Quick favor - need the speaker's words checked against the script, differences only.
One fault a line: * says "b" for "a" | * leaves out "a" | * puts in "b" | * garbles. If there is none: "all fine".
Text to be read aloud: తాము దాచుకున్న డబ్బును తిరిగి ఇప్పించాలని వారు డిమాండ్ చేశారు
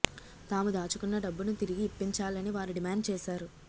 all fine